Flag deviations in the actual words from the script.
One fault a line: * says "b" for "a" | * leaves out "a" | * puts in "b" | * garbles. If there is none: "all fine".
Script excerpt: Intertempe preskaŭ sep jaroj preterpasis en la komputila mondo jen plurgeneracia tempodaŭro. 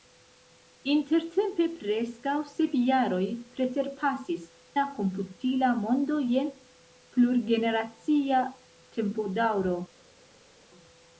* leaves out "en"